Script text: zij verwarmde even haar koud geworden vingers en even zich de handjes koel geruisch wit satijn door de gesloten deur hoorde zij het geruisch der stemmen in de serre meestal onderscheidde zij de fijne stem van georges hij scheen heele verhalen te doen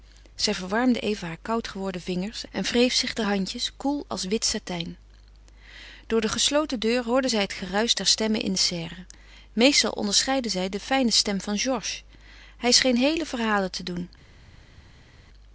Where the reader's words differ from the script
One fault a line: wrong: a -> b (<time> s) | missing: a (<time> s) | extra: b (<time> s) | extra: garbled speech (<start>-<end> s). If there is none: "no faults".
wrong: even -> wreef (2.6 s)
wrong: geruisch -> als (4.1 s)